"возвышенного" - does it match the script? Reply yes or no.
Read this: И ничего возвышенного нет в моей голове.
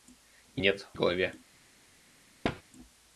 no